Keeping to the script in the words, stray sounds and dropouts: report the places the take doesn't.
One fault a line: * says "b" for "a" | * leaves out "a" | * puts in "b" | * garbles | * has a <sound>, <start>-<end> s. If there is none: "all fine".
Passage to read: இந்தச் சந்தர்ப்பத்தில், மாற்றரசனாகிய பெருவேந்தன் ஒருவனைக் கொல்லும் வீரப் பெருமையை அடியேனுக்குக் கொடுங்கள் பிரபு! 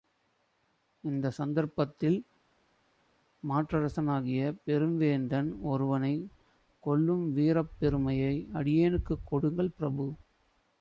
all fine